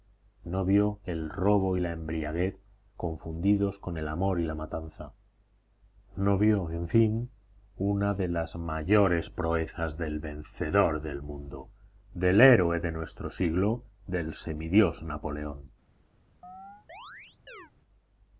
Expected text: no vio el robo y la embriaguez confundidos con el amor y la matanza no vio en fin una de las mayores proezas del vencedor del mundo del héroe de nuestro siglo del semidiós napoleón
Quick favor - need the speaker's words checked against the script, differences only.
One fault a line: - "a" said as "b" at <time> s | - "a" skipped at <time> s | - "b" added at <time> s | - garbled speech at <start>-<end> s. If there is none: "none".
none